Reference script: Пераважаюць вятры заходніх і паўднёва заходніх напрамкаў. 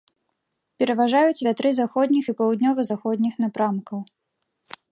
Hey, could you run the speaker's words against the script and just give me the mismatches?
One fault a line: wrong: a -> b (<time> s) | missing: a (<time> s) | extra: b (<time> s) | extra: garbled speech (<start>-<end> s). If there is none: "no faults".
no faults